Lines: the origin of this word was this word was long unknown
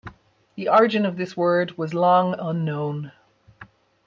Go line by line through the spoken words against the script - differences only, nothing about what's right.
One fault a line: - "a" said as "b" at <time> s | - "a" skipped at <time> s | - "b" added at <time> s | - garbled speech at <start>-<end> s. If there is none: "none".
- "this word was" skipped at 1.9 s